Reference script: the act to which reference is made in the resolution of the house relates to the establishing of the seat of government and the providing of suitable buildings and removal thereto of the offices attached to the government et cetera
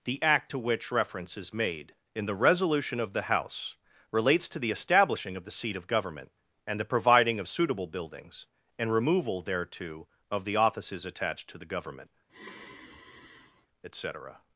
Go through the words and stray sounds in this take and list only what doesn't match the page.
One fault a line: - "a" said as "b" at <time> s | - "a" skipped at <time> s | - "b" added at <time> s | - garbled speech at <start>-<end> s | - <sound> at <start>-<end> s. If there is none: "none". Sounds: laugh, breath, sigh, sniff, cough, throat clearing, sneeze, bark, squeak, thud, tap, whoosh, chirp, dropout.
- sigh at 12.3-13.7 s